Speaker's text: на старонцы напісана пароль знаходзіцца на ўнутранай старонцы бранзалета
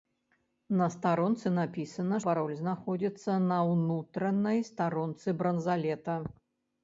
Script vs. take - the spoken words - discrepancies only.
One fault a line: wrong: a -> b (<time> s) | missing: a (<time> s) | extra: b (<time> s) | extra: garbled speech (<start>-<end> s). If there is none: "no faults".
no faults